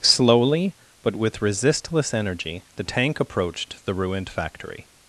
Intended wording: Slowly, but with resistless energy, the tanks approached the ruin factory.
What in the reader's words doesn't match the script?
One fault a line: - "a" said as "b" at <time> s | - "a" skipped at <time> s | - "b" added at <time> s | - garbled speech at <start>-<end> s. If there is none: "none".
- "tanks" said as "tank" at 2.8 s
- "ruin" said as "ruined" at 3.9 s